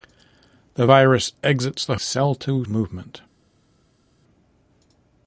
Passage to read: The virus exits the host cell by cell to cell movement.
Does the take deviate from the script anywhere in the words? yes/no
yes